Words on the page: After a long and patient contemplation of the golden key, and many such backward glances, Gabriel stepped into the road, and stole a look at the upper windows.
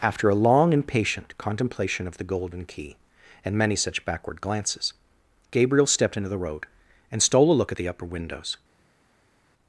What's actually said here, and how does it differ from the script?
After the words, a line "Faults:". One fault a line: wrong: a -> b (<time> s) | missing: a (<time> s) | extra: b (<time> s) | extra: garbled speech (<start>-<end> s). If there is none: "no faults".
After a long and patient contemplation of the golden key, and many such backward glances, Gabriel stepped into the road, and stole a look at the upper windows.
Faults:
no faults